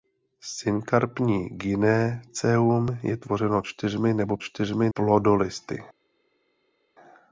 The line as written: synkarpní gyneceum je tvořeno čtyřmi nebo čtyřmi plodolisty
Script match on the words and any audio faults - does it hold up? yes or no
yes